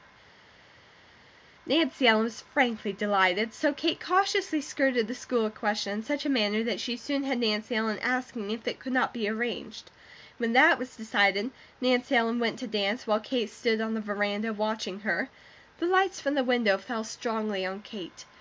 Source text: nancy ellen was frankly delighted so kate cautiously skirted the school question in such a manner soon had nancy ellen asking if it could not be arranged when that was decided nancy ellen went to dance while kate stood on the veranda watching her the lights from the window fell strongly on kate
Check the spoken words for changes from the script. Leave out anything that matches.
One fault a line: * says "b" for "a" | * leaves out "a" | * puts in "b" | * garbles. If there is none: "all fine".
* puts in "that she"